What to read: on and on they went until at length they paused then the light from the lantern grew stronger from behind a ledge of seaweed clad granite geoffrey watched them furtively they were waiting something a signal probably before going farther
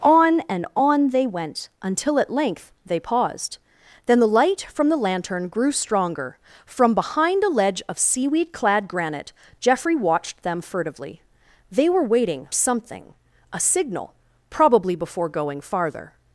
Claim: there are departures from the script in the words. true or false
false